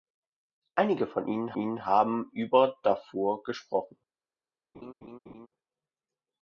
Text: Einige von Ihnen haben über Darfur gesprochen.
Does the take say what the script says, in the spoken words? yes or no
no